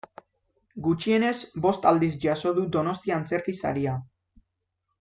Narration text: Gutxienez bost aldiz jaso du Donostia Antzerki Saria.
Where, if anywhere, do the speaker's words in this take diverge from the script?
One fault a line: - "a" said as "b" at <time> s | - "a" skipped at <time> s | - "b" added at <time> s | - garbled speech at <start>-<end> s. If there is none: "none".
none